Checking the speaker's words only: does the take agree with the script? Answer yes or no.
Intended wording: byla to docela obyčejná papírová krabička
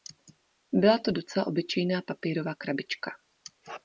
yes